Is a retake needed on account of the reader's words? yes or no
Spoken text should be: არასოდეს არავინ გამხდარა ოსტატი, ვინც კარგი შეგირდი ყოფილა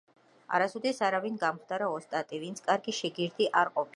yes